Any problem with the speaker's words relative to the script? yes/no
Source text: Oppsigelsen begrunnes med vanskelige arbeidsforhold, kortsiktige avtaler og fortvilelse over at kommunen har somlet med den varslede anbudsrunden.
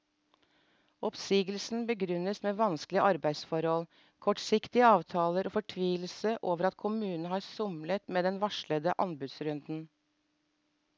no